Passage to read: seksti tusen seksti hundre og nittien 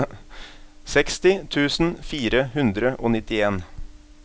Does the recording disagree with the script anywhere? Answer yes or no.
yes